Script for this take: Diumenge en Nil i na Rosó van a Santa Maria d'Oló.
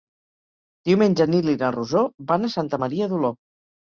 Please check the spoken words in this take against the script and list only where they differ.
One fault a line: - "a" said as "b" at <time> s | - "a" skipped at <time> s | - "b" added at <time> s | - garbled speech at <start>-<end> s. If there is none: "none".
none